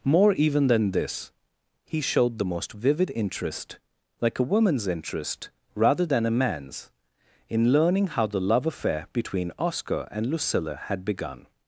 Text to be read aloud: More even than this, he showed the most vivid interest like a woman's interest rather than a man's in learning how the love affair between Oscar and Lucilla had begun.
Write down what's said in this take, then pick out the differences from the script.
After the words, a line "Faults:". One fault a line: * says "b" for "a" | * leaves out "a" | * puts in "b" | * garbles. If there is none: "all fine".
More even than this, he showed the most vivid interest like a woman's interest rather than a man's in learning how the love affair between Oscar and Lucilla had begun.
Faults:
all fine